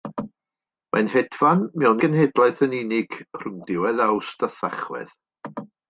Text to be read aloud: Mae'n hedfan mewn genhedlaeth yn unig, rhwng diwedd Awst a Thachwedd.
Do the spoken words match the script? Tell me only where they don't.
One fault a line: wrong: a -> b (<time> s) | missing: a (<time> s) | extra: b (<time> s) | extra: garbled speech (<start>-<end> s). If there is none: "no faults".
no faults